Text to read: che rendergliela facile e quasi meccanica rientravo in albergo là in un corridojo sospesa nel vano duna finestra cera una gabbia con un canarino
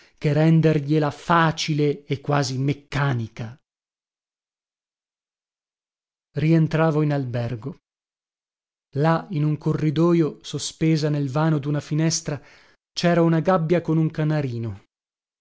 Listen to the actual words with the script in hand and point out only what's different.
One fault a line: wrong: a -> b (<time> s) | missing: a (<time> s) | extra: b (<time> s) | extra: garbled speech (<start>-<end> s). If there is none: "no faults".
no faults